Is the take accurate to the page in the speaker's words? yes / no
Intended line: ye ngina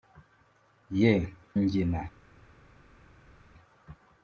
yes